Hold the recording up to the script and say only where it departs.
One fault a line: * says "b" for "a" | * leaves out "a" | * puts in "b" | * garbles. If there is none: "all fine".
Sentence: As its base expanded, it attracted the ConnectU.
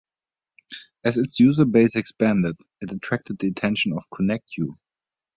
* puts in "user"
* puts in "attention of"